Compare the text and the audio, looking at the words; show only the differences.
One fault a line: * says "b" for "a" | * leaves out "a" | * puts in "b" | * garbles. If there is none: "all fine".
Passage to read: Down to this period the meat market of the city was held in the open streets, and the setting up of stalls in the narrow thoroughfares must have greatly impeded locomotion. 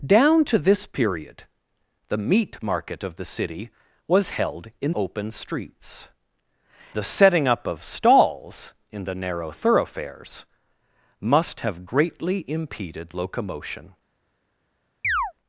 * leaves out "the"
* leaves out "and"